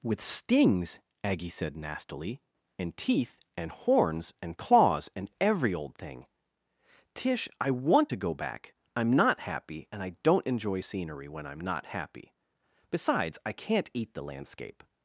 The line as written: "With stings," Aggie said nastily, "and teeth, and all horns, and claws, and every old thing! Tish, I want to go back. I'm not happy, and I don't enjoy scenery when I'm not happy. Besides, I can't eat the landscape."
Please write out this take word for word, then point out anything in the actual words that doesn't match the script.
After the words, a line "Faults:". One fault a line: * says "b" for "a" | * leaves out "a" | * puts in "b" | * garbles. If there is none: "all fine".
"With stings," Aggie said nastily, "and teeth, and horns, and claws, and every old thing! Tish, I want to go back. I'm not happy, and I don't enjoy scenery when I'm not happy. Besides, I can't eat the landscape."
Faults:
* leaves out "all"